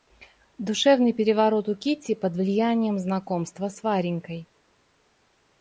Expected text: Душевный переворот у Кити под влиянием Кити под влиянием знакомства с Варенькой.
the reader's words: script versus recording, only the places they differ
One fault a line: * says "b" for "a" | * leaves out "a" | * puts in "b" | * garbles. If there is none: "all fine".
* leaves out "Кити под влиянием"